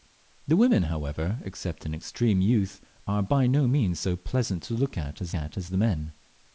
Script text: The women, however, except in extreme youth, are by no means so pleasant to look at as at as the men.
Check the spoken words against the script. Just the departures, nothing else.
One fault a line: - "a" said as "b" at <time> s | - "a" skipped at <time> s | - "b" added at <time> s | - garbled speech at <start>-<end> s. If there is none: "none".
none